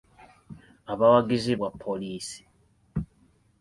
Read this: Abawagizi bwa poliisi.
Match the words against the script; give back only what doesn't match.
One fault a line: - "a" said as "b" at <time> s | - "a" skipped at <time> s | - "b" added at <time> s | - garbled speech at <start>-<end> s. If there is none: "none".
none